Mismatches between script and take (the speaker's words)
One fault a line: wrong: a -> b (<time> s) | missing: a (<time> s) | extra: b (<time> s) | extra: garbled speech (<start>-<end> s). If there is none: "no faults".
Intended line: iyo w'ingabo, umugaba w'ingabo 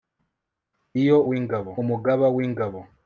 no faults